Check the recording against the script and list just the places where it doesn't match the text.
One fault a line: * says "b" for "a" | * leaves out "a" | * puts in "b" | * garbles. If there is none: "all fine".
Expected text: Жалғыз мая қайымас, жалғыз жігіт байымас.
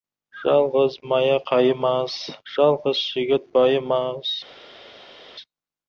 all fine